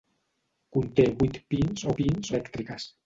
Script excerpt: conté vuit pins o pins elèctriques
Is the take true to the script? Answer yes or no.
yes